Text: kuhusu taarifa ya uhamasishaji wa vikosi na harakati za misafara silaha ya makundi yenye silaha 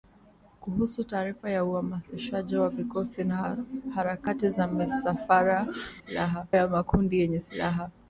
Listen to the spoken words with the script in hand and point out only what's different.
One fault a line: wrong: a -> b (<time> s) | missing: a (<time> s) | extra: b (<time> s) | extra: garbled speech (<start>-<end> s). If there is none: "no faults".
no faults